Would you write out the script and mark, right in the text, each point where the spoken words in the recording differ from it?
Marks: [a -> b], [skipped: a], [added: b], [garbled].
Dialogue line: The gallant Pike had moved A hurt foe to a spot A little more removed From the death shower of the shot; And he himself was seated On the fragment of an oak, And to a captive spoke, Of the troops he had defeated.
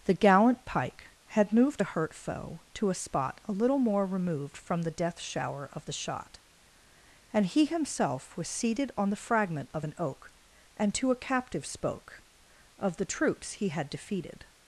The gallant Pike had moved A hurt foe to a spot A little more removed From the death shower of the shot; And he himself was seated On the fragment of an oak, And to a captive spoke, Of the troops he had defeated.